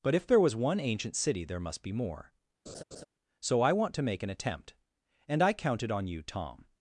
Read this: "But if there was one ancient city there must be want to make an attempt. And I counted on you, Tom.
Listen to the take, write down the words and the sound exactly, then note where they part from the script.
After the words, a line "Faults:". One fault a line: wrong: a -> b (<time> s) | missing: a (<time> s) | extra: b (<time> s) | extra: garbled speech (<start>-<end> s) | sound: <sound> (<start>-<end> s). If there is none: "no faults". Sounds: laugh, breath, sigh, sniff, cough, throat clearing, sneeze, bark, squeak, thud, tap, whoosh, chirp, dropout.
"But if there was one ancient city there must be more. So I want to make an attempt. And I counted on you, Tom.
Faults:
extra: more So I (1.9 s)
sound: laugh (2.7-3.0 s)